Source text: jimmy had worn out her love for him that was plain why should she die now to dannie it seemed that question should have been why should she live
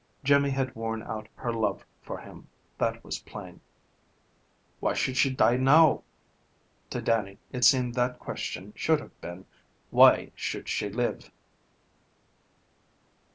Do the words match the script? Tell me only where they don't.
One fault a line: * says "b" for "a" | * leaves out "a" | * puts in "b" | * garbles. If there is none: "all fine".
all fine